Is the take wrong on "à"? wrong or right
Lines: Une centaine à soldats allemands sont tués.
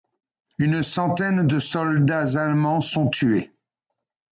wrong